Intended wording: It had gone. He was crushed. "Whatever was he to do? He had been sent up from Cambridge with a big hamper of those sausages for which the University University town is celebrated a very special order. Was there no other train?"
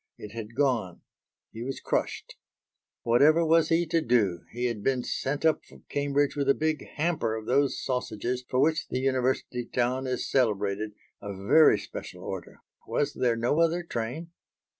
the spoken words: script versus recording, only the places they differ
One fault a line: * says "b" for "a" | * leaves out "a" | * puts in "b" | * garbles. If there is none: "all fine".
* leaves out "University"